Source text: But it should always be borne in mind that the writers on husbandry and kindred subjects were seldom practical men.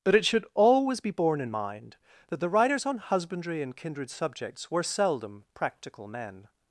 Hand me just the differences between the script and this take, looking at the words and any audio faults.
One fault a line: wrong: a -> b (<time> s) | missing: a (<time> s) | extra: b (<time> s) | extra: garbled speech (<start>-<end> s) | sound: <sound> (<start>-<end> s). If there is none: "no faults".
no faults